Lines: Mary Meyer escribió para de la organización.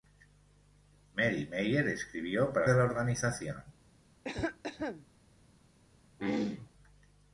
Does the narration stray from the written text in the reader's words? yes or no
no